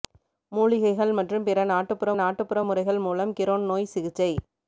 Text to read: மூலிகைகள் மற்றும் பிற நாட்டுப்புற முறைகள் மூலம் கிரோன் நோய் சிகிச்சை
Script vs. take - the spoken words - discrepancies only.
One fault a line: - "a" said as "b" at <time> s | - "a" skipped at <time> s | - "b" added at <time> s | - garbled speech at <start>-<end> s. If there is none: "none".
- "நாட்டுப்புற" added at 2.1 s